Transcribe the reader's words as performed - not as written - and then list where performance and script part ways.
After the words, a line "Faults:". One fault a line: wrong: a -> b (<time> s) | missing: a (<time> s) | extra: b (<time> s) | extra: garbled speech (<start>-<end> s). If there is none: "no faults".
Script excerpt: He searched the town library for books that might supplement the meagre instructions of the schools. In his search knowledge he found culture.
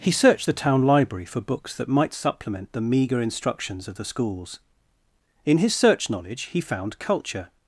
He searched the town library for books that might supplement the meagre instructions of the schools. In his search knowledge he found culture.
Faults:
no faults